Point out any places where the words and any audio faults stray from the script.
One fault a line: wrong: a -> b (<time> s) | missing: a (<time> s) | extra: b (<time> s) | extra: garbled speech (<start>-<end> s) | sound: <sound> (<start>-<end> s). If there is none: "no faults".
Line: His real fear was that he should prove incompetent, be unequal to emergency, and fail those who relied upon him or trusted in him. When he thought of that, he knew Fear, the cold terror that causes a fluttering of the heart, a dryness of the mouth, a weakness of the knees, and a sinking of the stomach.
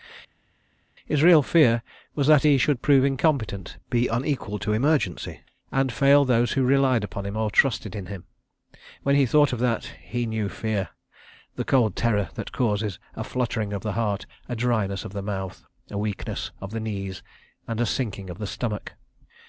no faults